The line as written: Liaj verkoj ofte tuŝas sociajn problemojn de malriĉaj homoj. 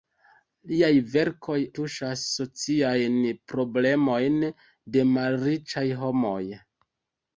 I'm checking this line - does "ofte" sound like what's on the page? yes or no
no